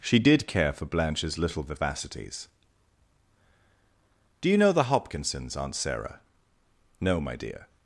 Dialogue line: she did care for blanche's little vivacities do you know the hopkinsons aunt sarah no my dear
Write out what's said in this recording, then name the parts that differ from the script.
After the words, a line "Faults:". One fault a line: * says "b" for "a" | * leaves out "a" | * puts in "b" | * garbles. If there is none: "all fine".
she did care for blanche's little vivacities do you know the hopkinsons aunt sarah no my dear
Faults:
all fine